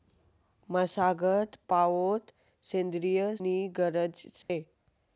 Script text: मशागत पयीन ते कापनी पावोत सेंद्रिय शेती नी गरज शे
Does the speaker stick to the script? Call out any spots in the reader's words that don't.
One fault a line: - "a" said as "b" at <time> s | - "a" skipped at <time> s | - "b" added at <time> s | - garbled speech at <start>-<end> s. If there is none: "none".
- "पयीन ते कापनी" skipped at 1.6 s
- "शेती" skipped at 3.2 s